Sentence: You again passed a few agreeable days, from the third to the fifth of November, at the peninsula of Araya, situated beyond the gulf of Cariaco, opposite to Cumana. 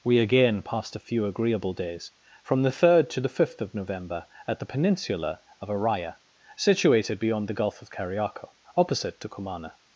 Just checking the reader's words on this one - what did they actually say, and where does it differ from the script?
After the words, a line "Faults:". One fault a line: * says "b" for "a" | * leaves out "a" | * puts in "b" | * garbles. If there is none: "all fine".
We again passed a few agreeable days, from the third to the fifth of November, at the peninsula of Araya, situated beyond the gulf of Cariaco, opposite to Cumana.
Faults:
* says "We" for "You"